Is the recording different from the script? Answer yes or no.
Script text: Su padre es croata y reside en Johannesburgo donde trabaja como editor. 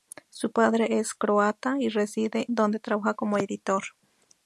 yes